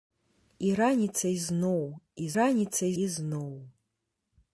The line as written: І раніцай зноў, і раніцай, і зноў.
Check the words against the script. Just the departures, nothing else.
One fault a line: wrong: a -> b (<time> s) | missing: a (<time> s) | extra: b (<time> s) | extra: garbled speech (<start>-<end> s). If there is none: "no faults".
no faults